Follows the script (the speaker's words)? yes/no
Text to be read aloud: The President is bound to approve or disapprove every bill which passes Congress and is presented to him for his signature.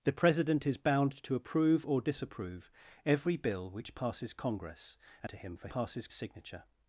no